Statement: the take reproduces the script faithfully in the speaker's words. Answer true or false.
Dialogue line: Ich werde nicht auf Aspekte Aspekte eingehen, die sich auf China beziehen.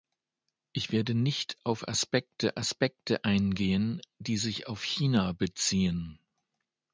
true